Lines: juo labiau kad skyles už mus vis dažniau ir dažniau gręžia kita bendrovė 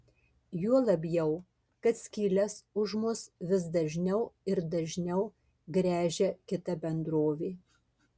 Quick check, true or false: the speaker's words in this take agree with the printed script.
true